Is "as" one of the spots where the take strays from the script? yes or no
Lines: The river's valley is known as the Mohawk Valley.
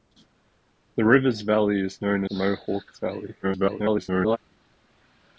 yes